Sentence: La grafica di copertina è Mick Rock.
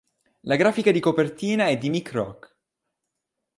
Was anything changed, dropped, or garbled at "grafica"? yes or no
no